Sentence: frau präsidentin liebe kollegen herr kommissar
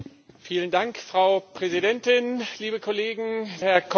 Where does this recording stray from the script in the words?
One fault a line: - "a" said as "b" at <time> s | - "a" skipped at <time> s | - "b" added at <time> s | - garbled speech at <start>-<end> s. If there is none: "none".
none